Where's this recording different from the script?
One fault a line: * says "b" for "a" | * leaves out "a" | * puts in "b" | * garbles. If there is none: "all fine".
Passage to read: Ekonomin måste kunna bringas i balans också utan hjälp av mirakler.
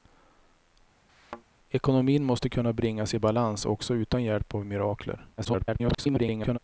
* garbles